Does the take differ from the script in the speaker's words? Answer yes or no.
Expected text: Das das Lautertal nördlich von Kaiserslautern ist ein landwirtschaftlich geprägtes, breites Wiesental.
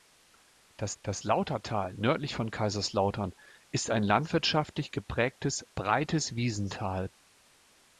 no